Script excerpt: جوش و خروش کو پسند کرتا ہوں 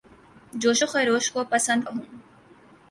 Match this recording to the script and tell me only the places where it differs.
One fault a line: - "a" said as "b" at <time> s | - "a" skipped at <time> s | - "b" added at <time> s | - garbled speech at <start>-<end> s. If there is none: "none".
- "کرتا" skipped at 1.8 s